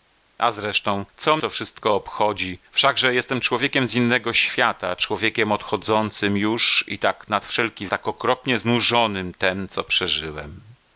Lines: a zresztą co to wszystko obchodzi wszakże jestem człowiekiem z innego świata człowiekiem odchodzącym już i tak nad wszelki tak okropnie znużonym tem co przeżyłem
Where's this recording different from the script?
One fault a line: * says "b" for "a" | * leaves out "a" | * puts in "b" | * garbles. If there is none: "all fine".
all fine